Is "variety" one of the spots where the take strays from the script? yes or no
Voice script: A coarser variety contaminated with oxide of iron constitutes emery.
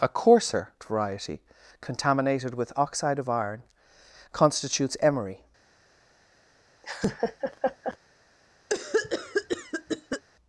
no